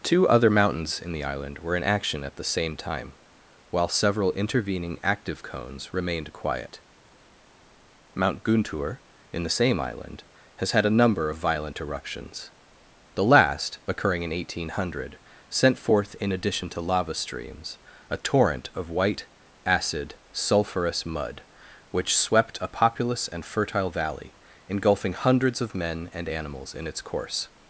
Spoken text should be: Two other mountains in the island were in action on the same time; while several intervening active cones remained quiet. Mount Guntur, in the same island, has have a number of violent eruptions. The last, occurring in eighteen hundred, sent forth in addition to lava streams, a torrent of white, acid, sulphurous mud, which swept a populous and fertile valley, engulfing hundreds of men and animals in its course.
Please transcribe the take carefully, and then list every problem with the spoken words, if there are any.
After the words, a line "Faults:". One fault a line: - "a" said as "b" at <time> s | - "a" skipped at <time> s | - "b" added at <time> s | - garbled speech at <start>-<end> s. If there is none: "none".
Two other mountains in the island were in action at the same time; while several intervening active cones remained quiet. Mount Guntur, in the same island, has had a number of violent eruptions. The last, occurring in eighteen hundred, sent forth in addition to lava streams, a torrent of white, acid, sulphurous mud, which swept a populous and fertile valley, engulfing hundreds of men and animals in its course.
Faults:
- "on" said as "at" at 2.2 s
- "have" said as "had" at 10.7 s